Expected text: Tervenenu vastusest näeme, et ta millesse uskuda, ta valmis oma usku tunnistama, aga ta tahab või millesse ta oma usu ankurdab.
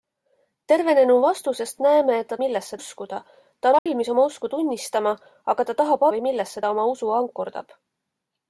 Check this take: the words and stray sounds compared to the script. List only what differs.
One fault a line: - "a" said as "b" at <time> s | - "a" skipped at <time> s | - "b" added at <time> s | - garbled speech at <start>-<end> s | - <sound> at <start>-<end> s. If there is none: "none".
- dropout at 3.8-3.9 s